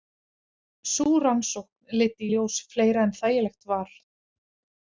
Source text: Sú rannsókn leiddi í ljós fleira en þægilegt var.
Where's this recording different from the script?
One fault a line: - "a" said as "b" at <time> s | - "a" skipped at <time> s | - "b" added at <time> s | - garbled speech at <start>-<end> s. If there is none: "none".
none